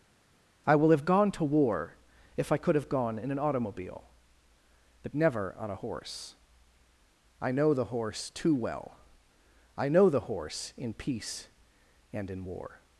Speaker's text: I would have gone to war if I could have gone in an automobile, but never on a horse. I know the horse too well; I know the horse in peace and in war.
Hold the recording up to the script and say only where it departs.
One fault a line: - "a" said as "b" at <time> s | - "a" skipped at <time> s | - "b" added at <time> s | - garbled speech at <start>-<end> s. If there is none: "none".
- "would" said as "will" at 0.7 s